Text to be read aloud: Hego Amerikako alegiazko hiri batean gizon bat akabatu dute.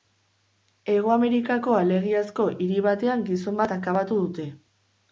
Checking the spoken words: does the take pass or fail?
pass